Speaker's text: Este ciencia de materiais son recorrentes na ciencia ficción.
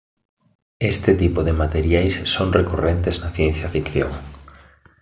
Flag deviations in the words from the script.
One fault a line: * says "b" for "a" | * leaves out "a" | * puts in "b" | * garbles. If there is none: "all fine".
* says "tipo" for "ciencia"